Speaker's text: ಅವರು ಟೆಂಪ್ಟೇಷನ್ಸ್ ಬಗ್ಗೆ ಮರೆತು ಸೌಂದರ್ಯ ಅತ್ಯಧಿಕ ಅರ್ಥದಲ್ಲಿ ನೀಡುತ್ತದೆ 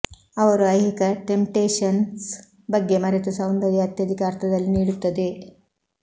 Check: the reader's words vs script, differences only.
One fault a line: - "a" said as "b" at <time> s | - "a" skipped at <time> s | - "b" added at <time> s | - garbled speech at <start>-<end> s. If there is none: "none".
- "ಐಹಿಕ" added at 0.7 s